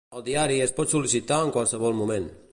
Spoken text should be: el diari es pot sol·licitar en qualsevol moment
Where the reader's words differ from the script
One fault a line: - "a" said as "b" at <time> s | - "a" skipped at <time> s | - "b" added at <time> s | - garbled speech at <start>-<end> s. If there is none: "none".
none